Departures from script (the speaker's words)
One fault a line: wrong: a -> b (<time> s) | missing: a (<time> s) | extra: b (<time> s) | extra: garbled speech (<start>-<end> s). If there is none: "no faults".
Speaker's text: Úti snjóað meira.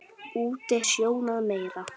no faults